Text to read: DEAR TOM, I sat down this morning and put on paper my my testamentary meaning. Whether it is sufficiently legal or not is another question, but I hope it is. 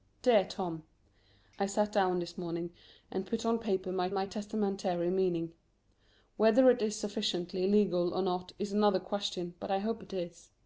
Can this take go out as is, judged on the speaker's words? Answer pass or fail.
pass